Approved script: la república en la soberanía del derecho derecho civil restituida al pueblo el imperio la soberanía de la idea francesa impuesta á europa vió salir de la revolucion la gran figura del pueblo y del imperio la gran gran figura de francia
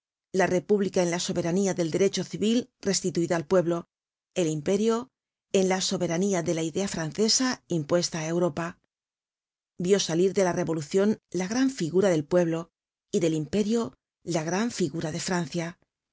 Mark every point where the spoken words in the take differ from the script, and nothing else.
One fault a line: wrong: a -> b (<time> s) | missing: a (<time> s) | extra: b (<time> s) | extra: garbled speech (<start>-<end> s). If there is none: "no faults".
missing: derecho (2.2 s)
extra: en (5.5 s)
missing: gran (14.7 s)